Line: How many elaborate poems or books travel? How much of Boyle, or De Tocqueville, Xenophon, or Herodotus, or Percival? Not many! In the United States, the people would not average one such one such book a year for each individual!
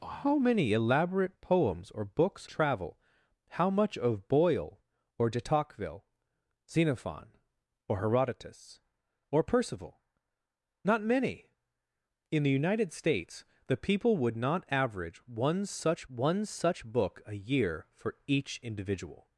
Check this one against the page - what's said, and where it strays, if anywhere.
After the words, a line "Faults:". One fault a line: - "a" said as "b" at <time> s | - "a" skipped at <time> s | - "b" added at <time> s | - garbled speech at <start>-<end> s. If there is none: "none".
How many elaborate poems or books travel? How much of Boyle, or De Tocqueville, Xenophon, or Herodotus, or Percival? Not many! In the United States, the people would not average one such one such book a year for each individual!
Faults:
none